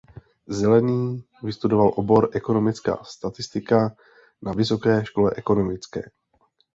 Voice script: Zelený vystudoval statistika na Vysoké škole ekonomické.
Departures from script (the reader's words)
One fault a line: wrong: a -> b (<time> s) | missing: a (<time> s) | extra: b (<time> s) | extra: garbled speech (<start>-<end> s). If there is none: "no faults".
extra: obor ekonomická (1.9 s)